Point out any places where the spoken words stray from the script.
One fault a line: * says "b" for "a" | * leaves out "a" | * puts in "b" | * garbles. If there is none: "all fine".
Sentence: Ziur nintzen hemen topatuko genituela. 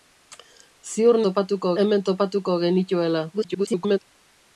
* says "topatuko" for "nintzen"
* garbles